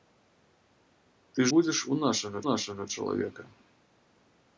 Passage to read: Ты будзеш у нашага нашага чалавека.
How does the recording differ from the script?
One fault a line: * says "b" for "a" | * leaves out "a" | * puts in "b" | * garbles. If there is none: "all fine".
all fine